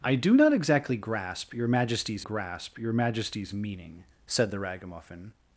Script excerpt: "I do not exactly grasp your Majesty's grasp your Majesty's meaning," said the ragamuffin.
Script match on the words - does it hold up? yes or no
yes